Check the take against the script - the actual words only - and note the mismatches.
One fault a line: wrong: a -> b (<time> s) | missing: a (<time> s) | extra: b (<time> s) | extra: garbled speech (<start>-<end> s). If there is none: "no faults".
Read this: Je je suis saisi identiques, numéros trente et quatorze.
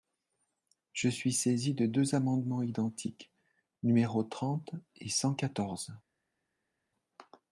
missing: je (1.1 s)
extra: de deux amendements (1.8 s)
extra: cent (5.1 s)